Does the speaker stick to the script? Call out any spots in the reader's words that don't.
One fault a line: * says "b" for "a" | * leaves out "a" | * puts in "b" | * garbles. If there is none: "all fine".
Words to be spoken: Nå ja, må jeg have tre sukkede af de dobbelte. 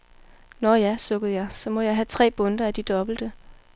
* puts in "sukkede jeg så"
* says "bundter" for "sukkede"